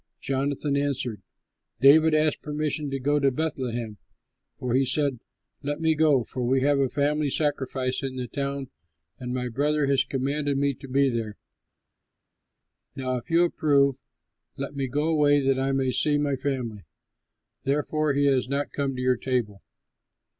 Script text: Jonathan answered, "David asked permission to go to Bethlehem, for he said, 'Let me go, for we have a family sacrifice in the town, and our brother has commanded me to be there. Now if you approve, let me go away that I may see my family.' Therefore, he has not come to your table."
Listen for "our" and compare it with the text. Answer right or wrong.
wrong